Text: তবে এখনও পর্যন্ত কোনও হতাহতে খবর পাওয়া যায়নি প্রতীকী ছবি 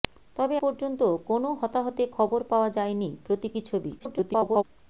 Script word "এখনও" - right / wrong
wrong